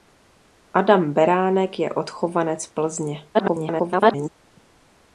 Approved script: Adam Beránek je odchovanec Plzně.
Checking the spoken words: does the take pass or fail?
fail